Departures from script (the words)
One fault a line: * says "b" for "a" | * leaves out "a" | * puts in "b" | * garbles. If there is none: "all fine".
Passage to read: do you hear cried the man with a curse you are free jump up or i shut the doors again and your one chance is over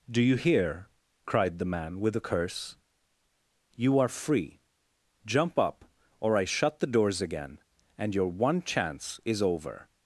all fine